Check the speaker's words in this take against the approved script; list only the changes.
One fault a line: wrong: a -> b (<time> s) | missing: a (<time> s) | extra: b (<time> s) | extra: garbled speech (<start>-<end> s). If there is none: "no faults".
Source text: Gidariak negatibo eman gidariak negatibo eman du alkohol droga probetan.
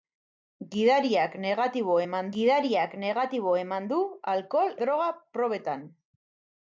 no faults